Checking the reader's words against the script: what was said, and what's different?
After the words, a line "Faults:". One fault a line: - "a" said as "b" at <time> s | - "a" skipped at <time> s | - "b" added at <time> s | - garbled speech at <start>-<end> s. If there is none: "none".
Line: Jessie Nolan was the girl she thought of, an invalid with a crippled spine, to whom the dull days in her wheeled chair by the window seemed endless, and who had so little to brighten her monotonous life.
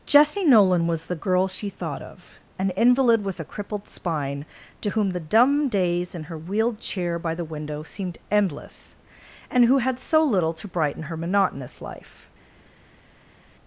Jessie Nolan was the girl she thought of, an invalid with a crippled spine, to whom the dumb days in her wheeled chair by the window seemed endless, and who had so little to brighten her monotonous life.
Faults:
- "dull" said as "dumb" at 5.2 s